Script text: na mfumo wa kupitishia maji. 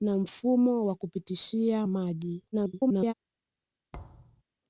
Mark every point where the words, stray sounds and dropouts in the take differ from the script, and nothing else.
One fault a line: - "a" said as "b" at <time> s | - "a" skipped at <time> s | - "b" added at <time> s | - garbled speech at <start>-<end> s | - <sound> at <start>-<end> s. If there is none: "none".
- garbled speech at 2.5-3.1 s
- thud at 3.9-4.4 s